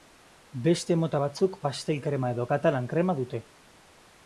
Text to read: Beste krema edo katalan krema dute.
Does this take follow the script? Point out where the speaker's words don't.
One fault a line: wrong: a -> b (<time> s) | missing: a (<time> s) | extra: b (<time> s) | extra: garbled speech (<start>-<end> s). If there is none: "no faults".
extra: mota batzuk pastel (1.0 s)